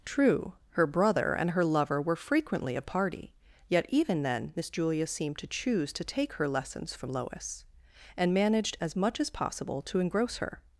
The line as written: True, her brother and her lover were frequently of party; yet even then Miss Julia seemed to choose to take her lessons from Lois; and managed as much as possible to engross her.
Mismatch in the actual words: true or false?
false